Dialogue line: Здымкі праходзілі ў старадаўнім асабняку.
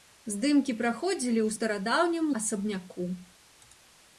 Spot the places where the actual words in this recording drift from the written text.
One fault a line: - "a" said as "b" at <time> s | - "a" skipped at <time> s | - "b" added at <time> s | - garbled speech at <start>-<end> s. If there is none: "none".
none